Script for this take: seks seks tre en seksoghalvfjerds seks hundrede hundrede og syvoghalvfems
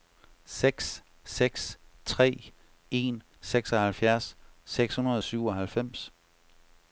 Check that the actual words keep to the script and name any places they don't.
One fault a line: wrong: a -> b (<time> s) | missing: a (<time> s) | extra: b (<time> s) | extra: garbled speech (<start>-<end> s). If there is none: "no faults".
missing: hundrede (5.2 s)